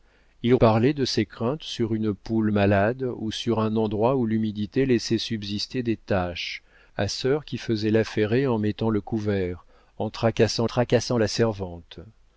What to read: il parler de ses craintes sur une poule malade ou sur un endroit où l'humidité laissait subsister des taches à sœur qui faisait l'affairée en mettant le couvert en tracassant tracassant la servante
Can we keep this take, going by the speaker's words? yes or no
yes